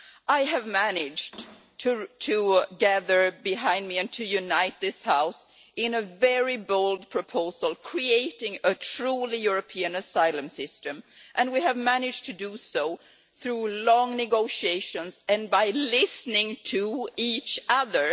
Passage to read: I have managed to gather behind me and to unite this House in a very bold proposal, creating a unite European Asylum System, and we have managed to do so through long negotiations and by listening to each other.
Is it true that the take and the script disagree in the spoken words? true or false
true